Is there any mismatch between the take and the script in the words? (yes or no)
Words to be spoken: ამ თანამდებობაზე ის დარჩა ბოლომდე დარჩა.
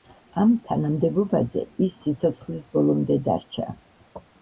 yes